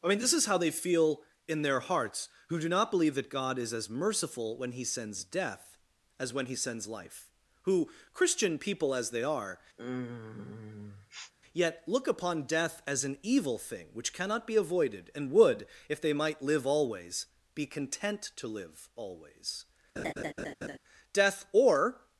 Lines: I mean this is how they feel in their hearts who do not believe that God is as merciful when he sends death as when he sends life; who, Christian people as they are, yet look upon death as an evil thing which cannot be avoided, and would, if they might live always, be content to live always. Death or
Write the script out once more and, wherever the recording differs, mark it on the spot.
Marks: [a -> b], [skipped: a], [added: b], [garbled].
I mean this is how they feel in their hearts who do not believe that God is as merciful when he sends death as when he sends life; who, Christian people as they are, yet look upon death as an evil thing which cannot be avoided, and would, if they might live always, be content to live always. Death or